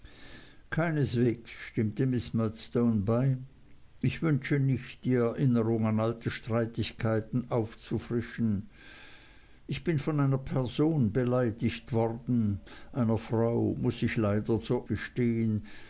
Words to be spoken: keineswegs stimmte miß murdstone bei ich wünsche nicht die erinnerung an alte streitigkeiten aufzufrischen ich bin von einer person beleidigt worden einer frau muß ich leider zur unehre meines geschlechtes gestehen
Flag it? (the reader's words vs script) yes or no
yes